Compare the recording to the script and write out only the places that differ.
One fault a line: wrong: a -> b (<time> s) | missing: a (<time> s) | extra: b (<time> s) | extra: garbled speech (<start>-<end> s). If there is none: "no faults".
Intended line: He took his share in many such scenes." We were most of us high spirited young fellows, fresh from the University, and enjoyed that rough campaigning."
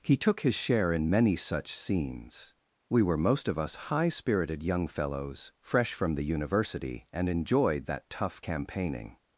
wrong: rough -> tough (8.1 s)